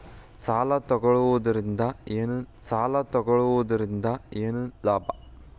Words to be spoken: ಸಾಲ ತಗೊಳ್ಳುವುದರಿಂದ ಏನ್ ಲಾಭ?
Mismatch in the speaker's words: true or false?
true